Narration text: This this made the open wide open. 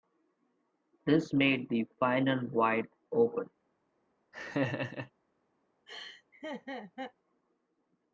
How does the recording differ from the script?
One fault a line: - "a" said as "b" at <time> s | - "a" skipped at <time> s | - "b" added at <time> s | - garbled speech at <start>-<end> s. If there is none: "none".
- "this" skipped at 1.4 s
- "open" said as "final" at 2.0 s